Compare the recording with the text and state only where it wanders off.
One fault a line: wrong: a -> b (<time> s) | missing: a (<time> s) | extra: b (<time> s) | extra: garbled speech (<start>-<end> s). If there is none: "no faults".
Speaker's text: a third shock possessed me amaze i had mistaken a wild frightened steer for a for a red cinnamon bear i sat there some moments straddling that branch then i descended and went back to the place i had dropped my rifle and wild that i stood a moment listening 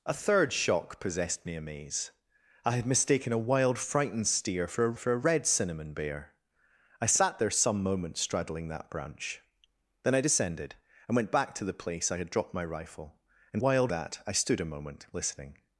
no faults